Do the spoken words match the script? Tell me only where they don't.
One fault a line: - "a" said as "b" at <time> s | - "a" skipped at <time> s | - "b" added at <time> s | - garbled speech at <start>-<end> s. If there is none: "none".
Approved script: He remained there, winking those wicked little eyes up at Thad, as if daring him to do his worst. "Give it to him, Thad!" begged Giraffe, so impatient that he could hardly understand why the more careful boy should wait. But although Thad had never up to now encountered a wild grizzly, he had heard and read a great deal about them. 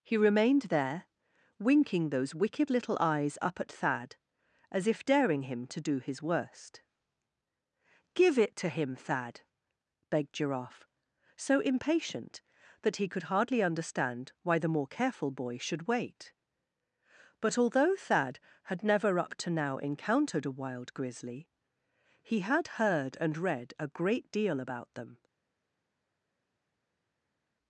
none